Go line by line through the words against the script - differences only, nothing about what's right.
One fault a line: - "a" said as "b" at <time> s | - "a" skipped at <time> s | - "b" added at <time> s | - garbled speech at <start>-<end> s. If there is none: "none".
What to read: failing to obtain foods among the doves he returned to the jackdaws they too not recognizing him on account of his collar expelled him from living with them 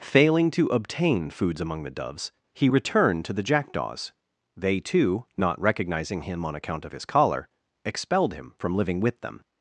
none